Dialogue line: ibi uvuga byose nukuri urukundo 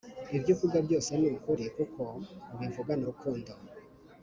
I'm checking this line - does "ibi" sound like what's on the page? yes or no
no